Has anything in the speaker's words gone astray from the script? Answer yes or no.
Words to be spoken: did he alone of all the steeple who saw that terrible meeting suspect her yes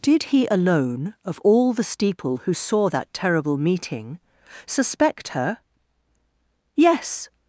no